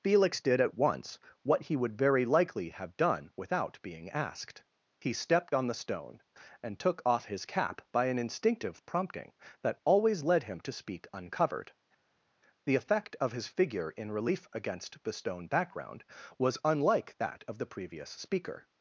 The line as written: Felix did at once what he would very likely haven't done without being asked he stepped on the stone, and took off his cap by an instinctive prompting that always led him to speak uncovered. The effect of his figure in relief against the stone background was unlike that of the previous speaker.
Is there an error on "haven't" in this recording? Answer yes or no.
yes